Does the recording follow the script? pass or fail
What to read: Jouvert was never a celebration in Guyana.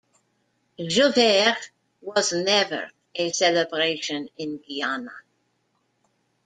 pass